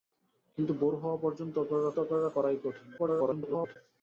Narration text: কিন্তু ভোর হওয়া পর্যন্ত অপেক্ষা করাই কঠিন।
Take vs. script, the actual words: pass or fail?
fail